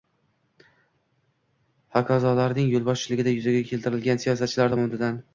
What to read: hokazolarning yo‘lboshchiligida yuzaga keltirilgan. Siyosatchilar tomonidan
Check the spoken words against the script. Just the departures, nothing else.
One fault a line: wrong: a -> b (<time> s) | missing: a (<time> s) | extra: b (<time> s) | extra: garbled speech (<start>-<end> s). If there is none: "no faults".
no faults